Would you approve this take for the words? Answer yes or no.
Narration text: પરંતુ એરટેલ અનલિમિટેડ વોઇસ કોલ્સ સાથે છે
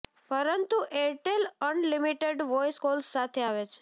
no